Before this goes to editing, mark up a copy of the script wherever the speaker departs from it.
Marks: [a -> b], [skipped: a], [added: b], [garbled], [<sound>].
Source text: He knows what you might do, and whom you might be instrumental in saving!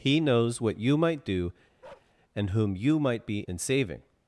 He knows what you might do, [bark] and whom you might be [skipped: instrumental] in saving!